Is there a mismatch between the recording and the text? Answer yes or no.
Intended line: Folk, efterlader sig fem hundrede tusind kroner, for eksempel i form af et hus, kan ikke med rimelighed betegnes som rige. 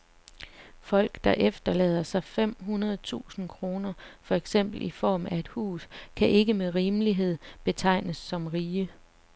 yes